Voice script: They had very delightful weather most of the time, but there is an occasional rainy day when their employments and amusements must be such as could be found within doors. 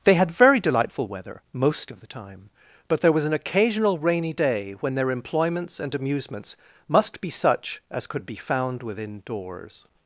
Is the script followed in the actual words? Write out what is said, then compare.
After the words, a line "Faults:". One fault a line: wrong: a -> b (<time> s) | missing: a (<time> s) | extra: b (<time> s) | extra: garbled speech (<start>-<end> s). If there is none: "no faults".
They had very delightful weather most of the time, but there was an occasional rainy day when their employments and amusements must be such as could be found within doors.
Faults:
wrong: is -> was (3.1 s)